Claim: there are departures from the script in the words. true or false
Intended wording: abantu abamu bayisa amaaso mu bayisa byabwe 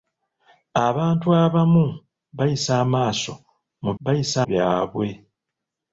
false